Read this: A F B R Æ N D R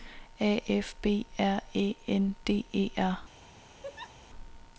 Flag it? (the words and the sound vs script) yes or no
yes